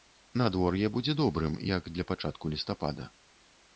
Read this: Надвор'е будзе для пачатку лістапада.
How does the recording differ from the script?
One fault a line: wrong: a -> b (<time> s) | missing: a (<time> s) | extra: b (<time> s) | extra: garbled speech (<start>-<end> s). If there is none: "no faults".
extra: добрым як (1.2 s)